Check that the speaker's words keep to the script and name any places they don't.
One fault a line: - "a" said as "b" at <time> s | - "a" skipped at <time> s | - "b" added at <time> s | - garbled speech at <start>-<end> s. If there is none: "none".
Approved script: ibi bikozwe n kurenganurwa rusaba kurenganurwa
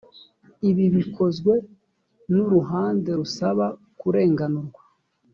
- "kurenganurwa" said as "uruhande" at 2.5 s